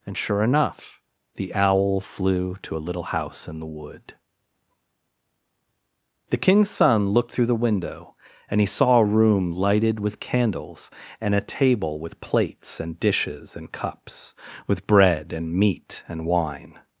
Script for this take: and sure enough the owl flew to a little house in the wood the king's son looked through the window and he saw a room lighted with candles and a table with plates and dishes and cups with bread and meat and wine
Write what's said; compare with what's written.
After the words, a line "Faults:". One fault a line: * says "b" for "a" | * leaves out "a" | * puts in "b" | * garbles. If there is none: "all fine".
and sure enough the owl flew to a little house in the wood the king's son looked through the window and he saw a room lighted with candles and a table with plates and dishes and cups with bread and meat and wine
Faults:
all fine